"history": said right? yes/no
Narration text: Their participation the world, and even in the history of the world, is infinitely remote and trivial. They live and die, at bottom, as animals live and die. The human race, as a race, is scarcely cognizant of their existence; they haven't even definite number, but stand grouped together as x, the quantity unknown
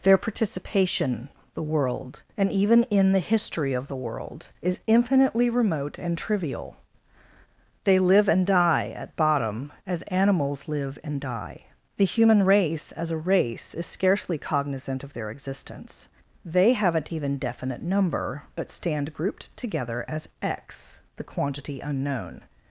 yes